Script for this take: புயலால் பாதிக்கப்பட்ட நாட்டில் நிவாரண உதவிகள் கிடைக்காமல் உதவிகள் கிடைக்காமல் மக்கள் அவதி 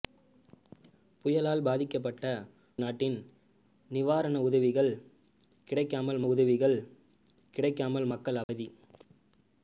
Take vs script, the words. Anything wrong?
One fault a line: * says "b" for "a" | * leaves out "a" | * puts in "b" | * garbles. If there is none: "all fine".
all fine